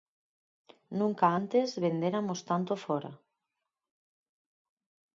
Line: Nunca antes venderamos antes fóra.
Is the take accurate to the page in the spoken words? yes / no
no